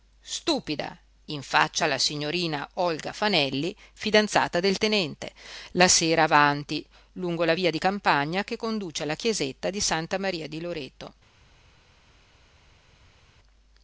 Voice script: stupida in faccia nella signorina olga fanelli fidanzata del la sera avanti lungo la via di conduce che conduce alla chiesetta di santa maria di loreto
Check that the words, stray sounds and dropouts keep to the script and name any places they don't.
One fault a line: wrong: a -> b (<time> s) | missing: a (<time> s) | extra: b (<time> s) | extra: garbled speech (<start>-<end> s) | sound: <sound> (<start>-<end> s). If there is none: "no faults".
wrong: nella -> alla (1.8 s)
extra: tenente (4.8 s)
wrong: conduce -> campagna (7.8 s)